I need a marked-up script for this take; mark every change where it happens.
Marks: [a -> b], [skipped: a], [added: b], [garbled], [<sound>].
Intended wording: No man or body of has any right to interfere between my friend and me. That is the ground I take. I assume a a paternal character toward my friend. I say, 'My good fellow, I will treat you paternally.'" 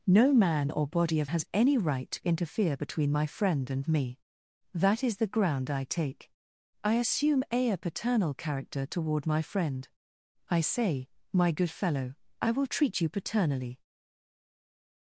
No man or body of has any right to interfere between my friend and me. That is the ground I take. I assume a a paternal character toward my friend. I say, 'My good fellow, I will treat you paternally.'"